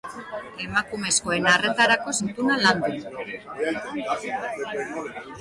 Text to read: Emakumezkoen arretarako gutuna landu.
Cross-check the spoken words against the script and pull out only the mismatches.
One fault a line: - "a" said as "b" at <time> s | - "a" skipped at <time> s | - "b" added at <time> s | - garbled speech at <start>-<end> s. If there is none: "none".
none